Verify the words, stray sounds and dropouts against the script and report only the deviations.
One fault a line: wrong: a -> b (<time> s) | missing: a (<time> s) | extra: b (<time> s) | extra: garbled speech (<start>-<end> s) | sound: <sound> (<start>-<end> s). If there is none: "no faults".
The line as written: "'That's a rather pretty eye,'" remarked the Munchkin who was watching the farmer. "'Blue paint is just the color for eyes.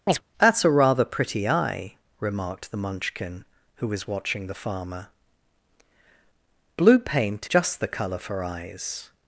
sound: chirp (0.1-0.2 s)
missing: is (7.5 s)